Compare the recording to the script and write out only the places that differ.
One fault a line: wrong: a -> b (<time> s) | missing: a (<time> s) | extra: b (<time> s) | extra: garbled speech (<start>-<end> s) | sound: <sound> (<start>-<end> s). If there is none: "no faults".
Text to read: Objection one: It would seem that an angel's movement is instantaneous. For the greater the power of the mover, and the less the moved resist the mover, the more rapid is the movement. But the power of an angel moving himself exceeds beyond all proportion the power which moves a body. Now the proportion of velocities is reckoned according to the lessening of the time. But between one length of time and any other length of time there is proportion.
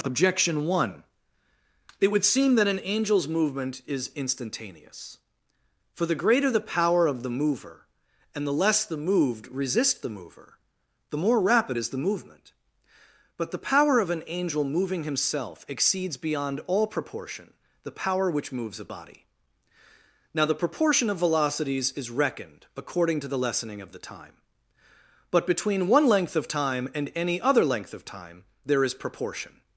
no faults